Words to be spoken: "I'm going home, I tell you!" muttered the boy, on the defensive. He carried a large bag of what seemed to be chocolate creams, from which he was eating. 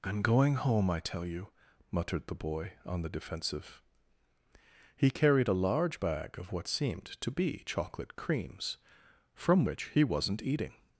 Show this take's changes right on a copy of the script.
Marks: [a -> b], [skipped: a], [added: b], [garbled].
"I'm going home, I tell you!" muttered the boy, on the defensive. He carried a large bag of what seemed to be chocolate creams, from which he [was -> wasn't] eating.